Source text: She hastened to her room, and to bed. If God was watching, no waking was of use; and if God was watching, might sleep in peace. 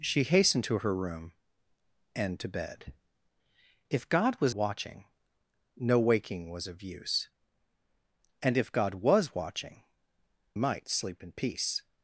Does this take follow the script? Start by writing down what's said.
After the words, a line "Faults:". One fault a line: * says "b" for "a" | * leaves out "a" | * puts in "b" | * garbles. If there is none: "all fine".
She hastened to her room, and to bed. If God was watching, no waking was of use; and if God was watching, might sleep in peace.
Faults:
all fine